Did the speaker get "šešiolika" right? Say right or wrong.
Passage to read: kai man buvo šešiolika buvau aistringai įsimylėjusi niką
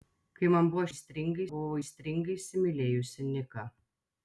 wrong